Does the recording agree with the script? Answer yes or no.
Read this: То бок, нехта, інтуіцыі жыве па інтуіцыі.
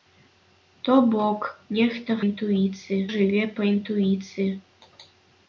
yes